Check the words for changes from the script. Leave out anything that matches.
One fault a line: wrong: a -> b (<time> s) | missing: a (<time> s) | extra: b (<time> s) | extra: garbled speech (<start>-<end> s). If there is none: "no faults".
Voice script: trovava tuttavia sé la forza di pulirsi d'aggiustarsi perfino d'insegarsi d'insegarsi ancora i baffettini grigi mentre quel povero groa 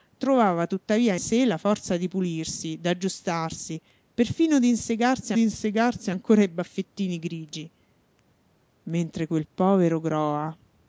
no faults